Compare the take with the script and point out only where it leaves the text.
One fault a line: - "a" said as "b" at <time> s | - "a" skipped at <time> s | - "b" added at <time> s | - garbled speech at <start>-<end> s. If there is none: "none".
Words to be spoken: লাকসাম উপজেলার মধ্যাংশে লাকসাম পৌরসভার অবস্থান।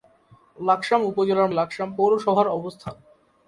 - "মধ্যাংশে" skipped at 1.5 s